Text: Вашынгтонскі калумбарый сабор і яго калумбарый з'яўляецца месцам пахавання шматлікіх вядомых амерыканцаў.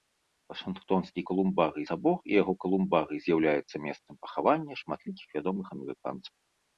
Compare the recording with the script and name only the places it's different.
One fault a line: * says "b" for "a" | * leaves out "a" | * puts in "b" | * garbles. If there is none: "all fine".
all fine